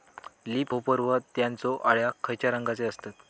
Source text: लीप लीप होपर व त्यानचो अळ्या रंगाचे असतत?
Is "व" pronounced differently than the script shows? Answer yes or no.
no